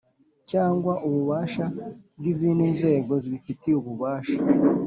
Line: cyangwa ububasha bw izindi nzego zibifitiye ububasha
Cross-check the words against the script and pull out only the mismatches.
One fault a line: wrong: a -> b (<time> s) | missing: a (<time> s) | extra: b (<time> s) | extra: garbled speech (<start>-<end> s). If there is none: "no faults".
no faults